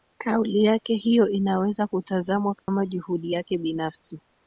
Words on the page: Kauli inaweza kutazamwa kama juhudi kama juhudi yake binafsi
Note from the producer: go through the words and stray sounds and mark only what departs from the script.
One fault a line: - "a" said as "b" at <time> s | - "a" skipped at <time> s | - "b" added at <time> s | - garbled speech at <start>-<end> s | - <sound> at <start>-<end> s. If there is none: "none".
- "yake hiyo" added at 0.6 s
- dropout at 2.6-2.7 s
- "kama juhudi" skipped at 3.3 s